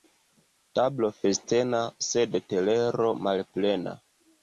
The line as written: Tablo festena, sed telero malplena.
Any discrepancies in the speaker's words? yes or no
no